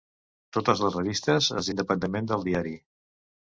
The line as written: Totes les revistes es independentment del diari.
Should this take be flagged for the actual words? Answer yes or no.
no